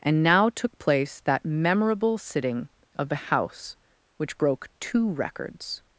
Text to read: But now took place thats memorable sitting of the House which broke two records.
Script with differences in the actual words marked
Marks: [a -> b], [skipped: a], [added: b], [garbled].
[But -> And] now took place [thats -> that] memorable sitting of the House which broke two records.